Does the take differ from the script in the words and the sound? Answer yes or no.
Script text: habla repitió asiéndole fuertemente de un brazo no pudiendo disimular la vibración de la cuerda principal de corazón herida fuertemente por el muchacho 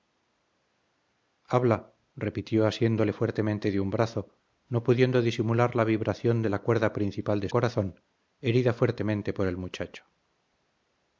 no